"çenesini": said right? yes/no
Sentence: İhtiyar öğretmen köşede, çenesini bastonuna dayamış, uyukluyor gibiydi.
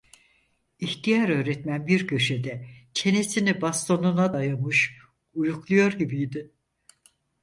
yes